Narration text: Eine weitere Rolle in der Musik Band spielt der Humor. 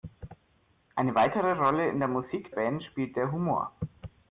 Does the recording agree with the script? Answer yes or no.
yes